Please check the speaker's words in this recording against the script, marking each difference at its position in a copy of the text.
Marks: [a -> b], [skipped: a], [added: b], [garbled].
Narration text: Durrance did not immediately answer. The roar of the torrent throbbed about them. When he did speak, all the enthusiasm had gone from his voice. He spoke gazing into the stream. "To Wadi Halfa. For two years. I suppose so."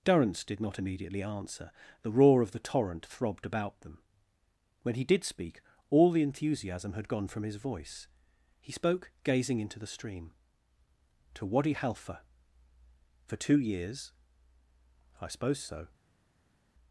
Durrance did not immediately answer. The roar of the torrent throbbed about them. When he did speak, all the enthusiasm had gone from his voice. He spoke gazing into the stream. "To Wadi Halfa. For two years. I suppose so."